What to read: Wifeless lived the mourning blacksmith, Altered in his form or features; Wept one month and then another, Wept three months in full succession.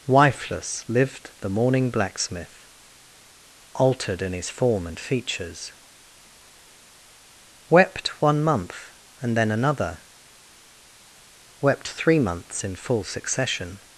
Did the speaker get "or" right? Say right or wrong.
wrong